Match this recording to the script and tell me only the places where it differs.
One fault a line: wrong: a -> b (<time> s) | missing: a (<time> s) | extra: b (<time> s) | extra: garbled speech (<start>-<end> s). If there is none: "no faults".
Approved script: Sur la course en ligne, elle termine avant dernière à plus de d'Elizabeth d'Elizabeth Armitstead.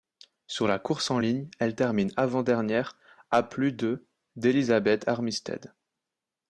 missing: d'Elizabeth (5.1 s)